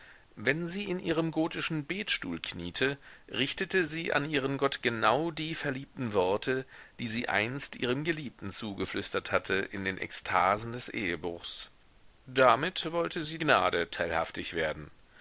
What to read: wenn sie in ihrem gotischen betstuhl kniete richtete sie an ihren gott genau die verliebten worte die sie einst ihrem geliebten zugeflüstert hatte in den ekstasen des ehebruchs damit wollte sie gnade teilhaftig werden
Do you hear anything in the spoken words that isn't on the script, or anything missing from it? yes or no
no